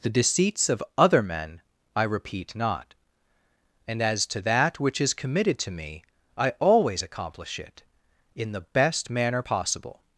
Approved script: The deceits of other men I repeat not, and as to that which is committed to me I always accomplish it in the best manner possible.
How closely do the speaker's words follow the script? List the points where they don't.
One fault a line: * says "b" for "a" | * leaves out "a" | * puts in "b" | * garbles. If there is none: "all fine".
all fine